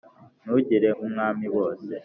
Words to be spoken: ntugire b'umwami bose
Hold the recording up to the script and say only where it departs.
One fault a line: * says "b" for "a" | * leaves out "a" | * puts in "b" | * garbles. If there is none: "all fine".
all fine